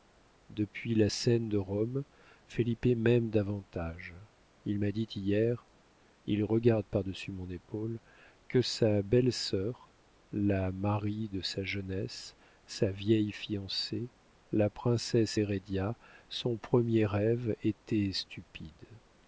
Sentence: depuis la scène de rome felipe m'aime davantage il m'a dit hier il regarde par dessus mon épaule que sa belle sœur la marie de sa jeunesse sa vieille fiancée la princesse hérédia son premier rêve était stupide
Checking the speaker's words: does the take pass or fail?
pass